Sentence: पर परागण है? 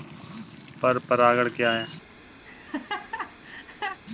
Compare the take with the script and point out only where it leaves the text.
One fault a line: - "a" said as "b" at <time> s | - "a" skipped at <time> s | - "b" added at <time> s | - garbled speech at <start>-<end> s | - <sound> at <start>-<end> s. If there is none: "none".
- "क्या" added at 1.5 s
- laugh at 2.4-4.0 s